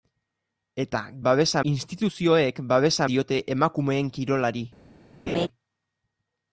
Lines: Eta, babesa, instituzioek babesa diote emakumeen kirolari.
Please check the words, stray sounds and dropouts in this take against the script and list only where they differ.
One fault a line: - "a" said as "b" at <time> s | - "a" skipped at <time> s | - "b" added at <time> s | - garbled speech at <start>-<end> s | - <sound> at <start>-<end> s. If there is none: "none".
- laugh at 5.3-5.5 s